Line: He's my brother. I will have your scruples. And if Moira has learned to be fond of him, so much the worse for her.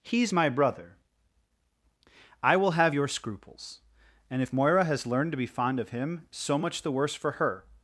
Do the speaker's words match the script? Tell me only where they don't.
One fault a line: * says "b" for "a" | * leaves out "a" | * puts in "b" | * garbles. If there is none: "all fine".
all fine